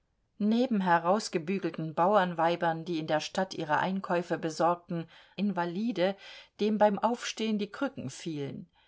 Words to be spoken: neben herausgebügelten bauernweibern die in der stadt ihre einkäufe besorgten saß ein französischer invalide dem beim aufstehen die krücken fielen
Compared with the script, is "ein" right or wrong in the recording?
wrong